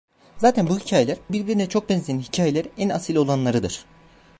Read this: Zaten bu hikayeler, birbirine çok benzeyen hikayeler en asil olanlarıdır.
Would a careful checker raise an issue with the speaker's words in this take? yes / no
no